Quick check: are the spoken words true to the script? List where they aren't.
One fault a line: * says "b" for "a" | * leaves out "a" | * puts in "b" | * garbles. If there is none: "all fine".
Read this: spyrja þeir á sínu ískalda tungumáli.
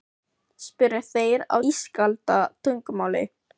* leaves out "sínu"